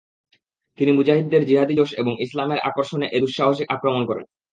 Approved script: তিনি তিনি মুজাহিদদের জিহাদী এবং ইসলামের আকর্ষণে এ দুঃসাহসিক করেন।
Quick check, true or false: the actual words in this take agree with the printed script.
false